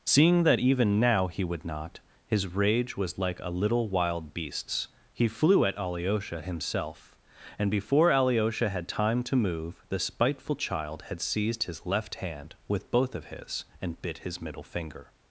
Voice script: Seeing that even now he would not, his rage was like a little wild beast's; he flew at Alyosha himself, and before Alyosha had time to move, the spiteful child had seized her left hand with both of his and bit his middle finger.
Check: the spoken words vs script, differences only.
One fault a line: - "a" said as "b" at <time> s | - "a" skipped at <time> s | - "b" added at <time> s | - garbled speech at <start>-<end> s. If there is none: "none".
- "her" said as "his" at 11.6 s